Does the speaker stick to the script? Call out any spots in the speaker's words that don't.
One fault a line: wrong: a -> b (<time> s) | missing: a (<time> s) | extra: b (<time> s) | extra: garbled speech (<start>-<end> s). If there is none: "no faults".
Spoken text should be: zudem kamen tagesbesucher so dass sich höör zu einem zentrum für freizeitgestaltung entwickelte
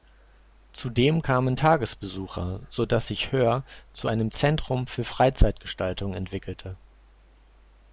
no faults